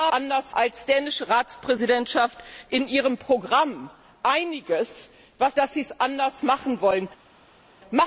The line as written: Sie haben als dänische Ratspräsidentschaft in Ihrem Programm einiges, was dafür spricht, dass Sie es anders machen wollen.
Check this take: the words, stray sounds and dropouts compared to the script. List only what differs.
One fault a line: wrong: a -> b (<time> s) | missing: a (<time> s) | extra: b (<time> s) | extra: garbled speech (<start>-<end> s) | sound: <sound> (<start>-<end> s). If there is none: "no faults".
wrong: haben -> anders (0.1 s)
missing: dafür spricht (5.6 s)